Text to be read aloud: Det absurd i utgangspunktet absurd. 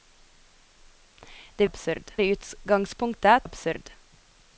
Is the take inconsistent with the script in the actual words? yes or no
no